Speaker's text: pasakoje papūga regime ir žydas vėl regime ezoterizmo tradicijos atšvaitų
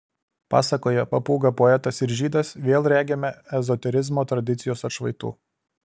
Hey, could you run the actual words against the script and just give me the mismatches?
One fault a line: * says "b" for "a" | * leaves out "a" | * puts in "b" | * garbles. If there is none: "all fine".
* says "poetas" for "regime"